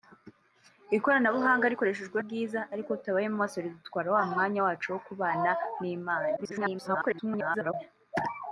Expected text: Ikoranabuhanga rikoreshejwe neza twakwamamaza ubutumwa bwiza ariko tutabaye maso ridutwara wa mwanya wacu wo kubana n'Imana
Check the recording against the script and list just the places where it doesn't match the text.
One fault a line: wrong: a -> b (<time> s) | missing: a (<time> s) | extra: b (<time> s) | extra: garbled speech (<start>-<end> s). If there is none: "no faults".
missing: neza twakwamamaza ubutumwa (2.2 s)
extra: garbled speech (6.4-7.7 s)